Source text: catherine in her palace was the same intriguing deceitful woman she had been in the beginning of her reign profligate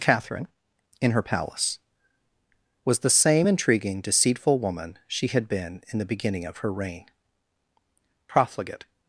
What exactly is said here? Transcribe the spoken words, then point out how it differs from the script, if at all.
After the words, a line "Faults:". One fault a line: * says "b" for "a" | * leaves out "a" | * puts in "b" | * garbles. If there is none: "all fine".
catherine in her palace was the same intriguing deceitful woman she had been in the beginning of her reign profligate
Faults:
all fine